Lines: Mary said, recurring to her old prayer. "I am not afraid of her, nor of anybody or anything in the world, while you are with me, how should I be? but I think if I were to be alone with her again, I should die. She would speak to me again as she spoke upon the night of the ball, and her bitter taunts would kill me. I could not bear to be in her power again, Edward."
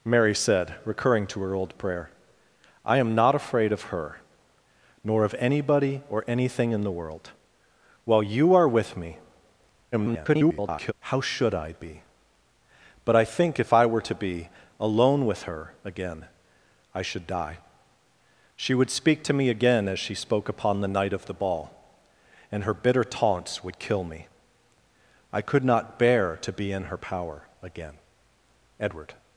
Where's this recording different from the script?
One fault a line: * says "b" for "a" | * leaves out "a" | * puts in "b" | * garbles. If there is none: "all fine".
* garbles